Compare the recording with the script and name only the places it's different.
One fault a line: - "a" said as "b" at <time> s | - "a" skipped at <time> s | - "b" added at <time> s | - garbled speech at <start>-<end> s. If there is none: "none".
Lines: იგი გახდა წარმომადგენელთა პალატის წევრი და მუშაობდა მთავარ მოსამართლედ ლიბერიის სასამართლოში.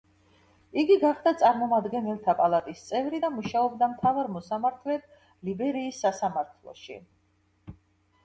none